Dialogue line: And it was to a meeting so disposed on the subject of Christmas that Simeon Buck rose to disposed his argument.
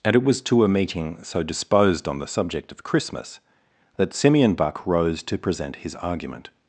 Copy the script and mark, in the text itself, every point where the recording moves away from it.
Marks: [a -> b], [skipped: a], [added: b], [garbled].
And it was to a meeting so disposed on the subject of Christmas that Simeon Buck rose to [disposed -> present] his argument.